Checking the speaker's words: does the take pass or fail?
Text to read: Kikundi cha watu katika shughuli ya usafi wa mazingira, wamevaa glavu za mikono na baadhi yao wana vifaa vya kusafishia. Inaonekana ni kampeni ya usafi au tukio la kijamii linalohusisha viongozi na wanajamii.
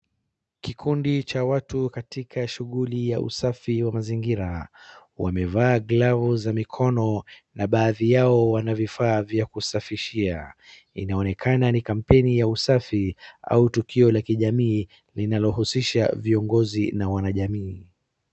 pass